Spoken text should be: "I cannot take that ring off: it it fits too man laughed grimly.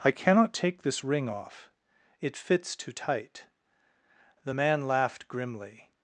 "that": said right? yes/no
no